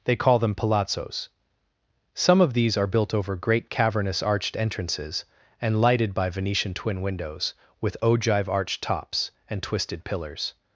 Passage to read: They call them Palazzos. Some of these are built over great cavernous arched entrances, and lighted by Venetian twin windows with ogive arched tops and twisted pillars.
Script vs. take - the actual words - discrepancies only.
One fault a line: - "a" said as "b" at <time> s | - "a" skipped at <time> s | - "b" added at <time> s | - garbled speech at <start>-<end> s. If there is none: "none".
none